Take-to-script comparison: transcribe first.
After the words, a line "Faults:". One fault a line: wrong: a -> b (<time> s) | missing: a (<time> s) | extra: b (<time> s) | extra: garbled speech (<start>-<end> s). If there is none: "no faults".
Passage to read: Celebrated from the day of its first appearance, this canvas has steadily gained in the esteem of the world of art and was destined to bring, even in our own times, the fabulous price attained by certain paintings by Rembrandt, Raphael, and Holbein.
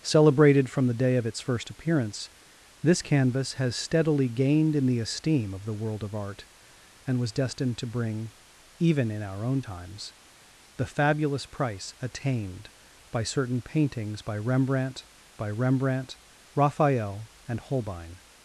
Celebrated from the day of its first appearance, this canvas has steadily gained in the esteem of the world of art and was destined to bring, even in our own times, the fabulous price attained by certain paintings by Rembrandt by Rembrandt, Raphael, and Holbein.
Faults:
extra: by Rembrandt (15.3 s)